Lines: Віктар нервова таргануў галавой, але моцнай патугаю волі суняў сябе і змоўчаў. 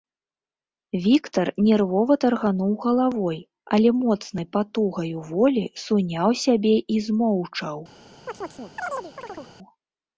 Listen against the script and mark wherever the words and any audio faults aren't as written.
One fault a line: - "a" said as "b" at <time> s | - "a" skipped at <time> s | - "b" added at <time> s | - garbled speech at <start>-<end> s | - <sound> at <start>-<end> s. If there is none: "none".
- chirp at 8.3-9.5 s